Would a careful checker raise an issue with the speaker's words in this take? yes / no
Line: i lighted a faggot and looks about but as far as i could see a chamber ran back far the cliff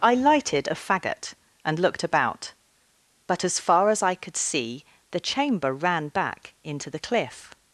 yes